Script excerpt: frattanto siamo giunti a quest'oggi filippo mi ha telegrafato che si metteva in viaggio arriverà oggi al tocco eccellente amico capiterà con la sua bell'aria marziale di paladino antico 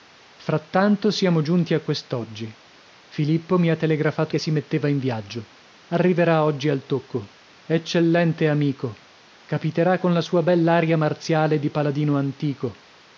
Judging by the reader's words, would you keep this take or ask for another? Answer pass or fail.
pass